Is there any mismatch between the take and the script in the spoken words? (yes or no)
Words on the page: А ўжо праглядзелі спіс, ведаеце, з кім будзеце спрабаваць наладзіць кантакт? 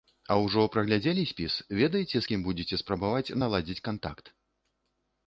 no